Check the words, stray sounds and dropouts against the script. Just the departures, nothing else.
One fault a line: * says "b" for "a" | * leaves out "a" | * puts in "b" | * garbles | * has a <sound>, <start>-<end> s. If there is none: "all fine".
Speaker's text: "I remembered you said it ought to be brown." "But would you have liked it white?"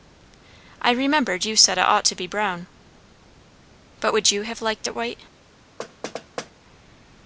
* has a thud, 5.8-6.5 s